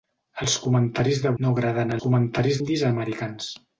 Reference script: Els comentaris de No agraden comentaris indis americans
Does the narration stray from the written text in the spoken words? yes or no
no